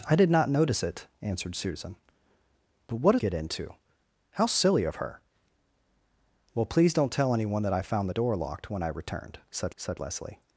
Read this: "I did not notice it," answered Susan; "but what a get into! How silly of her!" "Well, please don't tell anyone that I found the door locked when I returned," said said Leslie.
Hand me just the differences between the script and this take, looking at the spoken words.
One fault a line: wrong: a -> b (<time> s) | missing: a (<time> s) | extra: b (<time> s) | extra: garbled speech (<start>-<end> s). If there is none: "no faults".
no faults